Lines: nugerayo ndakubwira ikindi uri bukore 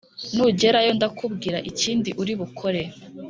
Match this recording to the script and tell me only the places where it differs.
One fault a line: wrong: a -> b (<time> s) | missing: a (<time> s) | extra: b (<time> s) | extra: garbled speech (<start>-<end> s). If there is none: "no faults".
no faults